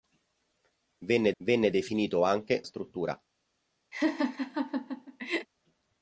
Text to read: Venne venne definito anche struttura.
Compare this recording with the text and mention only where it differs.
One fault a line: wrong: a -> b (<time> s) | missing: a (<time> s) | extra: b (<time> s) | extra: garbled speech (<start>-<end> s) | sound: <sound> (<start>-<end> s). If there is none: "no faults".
sound: laugh (3.9-5.5 s)